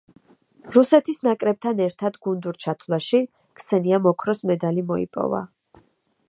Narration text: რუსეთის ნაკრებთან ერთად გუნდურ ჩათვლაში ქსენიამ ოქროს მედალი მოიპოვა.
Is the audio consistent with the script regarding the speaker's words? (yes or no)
yes